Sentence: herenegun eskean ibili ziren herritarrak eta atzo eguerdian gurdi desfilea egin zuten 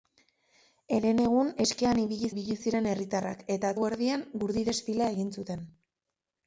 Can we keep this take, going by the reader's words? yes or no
no